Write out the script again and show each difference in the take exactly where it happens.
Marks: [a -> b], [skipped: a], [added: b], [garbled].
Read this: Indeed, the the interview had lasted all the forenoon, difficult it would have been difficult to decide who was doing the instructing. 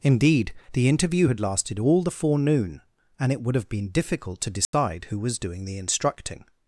Indeed, the [skipped: the] interview had lasted all the forenoon, [difficult -> and] it would have been difficult to decide who was doing the instructing.